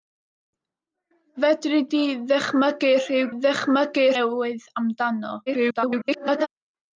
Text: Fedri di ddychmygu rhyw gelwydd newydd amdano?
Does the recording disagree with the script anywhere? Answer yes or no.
yes